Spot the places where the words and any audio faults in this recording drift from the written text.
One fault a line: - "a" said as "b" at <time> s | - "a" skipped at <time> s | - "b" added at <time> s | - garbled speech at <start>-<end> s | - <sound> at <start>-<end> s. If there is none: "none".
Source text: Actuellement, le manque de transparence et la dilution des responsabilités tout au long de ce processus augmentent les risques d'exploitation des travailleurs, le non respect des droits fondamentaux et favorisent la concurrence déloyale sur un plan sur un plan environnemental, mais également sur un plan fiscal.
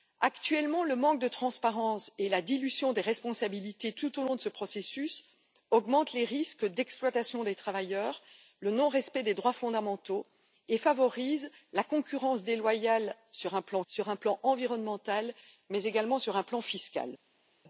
none